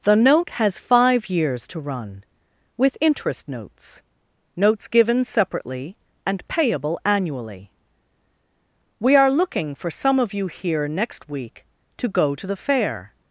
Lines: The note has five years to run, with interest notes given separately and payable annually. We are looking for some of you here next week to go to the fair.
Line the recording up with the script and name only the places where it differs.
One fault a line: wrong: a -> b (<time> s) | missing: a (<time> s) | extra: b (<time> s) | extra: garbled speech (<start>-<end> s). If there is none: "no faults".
extra: notes (4.5 s)